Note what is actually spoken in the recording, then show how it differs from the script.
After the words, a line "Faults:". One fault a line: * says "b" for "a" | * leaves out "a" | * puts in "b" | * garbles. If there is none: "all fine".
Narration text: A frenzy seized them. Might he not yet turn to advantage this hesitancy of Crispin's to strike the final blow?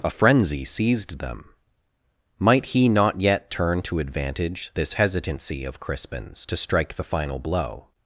A frenzy seized them. Might he not yet turn to advantage this hesitancy of Crispin's to strike the final blow?
Faults:
all fine